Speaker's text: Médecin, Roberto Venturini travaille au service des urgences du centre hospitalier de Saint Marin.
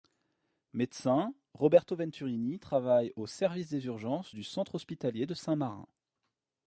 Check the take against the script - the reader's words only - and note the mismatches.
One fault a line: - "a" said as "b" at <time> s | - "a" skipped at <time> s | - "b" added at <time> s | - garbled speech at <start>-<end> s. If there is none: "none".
none